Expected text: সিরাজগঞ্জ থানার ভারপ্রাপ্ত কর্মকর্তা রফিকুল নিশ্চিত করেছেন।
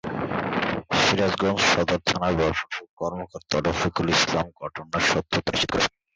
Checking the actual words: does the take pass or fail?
fail